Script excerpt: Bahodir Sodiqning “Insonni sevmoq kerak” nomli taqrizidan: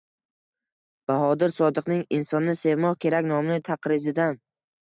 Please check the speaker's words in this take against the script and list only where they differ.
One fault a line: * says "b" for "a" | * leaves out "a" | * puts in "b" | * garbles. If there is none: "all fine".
all fine